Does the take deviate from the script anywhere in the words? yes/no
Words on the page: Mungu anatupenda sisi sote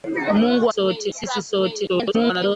yes